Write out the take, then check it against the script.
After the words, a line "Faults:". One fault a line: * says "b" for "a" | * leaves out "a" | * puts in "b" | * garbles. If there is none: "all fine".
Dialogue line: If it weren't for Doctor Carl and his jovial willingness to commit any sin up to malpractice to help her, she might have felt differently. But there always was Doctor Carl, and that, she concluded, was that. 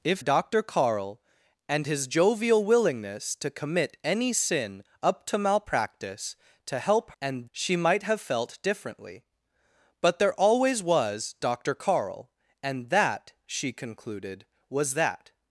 If Doctor Carl and his jovial willingness to commit any sin up to malpractice to help and, she might have felt differently. But there always was Doctor Carl, and that, she concluded, was that.
Faults:
* leaves out "it weren't for"
* says "and" for "her"